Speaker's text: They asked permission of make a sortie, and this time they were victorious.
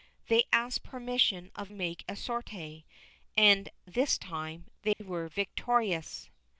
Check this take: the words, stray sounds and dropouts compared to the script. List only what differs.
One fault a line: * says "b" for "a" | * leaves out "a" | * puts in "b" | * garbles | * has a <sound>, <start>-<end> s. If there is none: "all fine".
* has a dropout, 4.9-5.0 s